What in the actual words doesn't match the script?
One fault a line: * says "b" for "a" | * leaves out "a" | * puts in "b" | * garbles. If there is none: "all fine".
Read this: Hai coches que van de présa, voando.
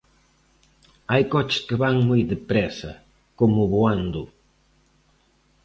* puts in "moi"
* puts in "como"